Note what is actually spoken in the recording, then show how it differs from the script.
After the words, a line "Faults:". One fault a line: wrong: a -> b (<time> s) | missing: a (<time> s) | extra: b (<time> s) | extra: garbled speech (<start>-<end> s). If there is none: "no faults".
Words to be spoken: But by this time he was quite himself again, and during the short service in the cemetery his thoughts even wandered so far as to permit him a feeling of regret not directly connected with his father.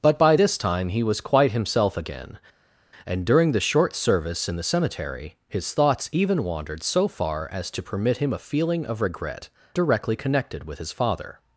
But by this time he was quite himself again, and during the short service in the cemetery his thoughts even wandered so far as to permit him a feeling of regret directly connected with his father.
Faults:
missing: not (9.5 s)